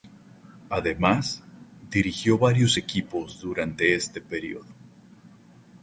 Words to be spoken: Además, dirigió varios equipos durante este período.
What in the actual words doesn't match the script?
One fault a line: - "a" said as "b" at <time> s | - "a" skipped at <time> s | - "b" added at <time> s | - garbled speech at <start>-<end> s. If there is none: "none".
none